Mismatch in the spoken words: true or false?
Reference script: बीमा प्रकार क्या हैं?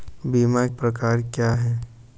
false